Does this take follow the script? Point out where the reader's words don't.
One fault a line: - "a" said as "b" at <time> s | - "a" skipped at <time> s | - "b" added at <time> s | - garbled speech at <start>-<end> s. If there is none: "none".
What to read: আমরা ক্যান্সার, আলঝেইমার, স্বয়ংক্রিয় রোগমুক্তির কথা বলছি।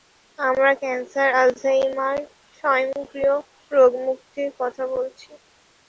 none